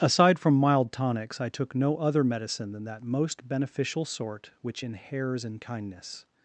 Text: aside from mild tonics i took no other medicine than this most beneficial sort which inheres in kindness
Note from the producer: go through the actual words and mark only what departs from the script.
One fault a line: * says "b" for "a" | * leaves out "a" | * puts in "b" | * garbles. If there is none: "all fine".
* says "that" for "this"